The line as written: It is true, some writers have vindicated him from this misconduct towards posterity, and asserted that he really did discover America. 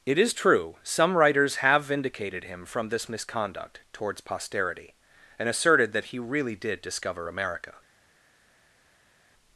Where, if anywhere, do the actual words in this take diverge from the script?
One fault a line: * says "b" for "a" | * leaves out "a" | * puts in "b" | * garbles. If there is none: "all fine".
all fine